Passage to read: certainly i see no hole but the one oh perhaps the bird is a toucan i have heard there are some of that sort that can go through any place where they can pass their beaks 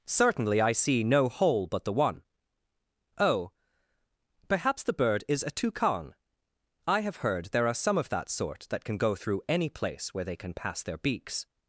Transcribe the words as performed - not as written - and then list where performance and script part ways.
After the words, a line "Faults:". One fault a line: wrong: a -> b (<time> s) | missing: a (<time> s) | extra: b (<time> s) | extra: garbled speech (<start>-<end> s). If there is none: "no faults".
certainly i see no hole but the one oh perhaps the bird is a toucan i have heard there are some of that sort that can go through any place where they can pass their beaks
Faults:
no faults